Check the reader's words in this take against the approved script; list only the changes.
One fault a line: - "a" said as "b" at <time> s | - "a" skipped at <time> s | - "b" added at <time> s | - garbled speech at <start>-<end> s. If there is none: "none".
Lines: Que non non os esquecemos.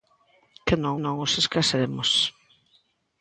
none